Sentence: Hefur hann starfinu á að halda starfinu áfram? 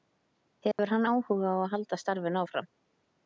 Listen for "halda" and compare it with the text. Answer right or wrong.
right